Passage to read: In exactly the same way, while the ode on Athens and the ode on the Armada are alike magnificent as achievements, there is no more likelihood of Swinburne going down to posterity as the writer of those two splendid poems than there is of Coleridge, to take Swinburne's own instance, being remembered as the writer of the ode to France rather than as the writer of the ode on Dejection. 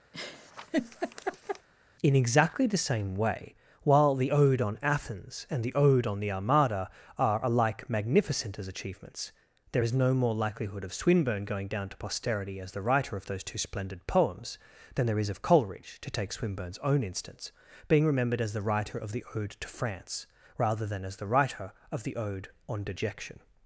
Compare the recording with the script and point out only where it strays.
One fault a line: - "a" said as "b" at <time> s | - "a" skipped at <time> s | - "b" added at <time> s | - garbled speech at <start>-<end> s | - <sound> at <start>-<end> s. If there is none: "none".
- laugh at 0.1-1.7 s